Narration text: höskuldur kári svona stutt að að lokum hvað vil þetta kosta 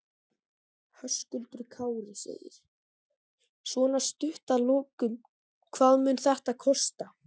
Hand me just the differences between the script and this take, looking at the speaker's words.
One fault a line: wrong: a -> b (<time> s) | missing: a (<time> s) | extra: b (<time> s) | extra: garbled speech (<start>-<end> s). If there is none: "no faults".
missing: að (4.7 s)
wrong: vil -> mun (6.1 s)